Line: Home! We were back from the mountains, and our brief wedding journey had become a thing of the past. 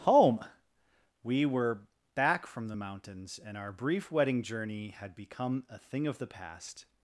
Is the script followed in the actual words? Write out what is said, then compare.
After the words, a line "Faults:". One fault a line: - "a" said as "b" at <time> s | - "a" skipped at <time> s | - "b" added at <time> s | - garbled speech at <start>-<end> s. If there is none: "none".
Home! We were back from the mountains, and our brief wedding journey had become a thing of the past.
Faults:
none